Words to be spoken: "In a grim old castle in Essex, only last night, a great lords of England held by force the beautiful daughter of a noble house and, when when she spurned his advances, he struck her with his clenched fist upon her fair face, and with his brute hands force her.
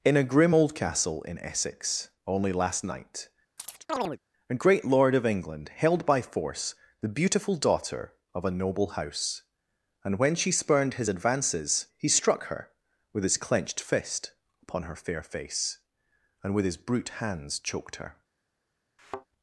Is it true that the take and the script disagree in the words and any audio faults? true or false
true